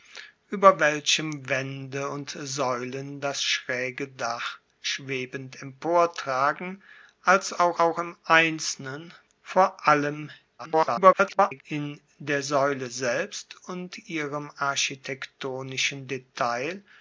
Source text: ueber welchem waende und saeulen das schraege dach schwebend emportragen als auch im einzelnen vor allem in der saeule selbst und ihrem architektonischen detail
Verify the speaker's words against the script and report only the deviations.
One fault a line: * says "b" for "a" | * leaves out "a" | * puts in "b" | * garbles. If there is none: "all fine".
* puts in "auch"
* garbles